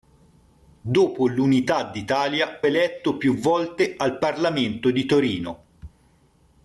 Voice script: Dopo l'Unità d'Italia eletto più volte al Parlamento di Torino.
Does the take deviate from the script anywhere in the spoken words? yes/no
no